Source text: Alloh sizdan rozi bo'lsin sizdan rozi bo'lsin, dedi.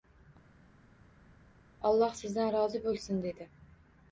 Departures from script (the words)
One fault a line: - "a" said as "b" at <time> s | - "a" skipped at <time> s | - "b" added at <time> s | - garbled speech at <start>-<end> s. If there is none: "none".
- "sizdan rozi bo'lsin" skipped at 3.2 s